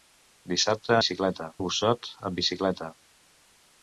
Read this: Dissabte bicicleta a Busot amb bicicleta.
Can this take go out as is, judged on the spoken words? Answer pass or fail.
pass